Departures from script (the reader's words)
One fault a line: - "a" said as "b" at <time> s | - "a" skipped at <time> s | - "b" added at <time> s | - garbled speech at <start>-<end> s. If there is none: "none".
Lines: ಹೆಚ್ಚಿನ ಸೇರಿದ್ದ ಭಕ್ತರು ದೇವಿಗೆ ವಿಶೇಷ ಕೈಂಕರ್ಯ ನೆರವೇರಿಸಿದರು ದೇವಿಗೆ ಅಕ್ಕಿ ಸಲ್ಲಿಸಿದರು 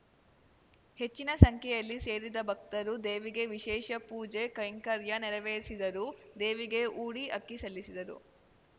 - "ಸಂಖ್ಯೆಯಲ್ಲಿ" added at 1.4 s
- "ಪೂಜೆ" added at 4.1 s
- "ಊಡಿ" added at 7.0 s